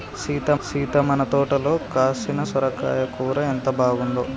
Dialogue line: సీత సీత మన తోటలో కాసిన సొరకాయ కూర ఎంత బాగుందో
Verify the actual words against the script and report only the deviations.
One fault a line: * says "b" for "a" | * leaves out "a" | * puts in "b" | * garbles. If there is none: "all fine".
all fine